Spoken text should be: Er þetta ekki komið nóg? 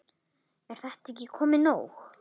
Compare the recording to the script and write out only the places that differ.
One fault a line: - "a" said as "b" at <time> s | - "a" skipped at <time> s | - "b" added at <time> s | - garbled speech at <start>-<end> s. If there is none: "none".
none